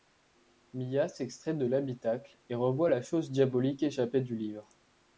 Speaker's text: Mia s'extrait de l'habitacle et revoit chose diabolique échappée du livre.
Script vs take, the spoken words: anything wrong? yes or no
yes